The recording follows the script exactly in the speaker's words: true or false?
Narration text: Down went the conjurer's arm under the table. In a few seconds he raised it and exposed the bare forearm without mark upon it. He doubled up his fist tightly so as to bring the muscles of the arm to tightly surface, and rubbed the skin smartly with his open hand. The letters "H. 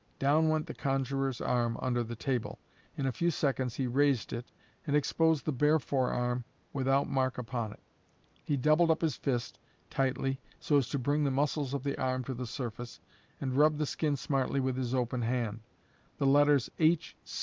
false